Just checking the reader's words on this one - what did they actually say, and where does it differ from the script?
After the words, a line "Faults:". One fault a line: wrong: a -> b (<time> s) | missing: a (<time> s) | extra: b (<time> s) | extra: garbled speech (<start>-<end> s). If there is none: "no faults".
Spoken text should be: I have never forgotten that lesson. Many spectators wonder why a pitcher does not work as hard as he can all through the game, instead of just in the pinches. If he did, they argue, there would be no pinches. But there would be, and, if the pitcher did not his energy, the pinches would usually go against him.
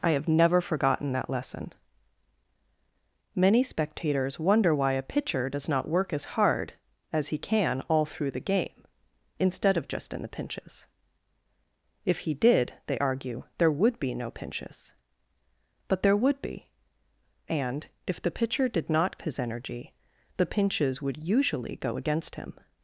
I have never forgotten that lesson. Many spectators wonder why a pitcher does not work as hard as he can all through the game, instead of just in the pinches. If he did, they argue, there would be no pinches. But there would be, and, if the pitcher did not his energy, the pinches would usually go against him.
Faults:
no faults